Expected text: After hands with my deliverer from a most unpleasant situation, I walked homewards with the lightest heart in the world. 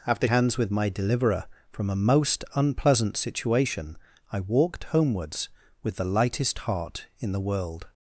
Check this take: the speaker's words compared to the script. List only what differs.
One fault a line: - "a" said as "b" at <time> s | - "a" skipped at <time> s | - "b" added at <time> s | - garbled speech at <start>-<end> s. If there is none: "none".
none